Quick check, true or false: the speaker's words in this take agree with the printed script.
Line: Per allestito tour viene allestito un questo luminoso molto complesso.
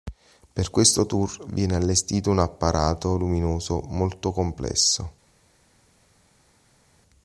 false